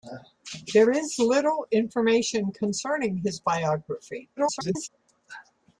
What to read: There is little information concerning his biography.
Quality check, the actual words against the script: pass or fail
fail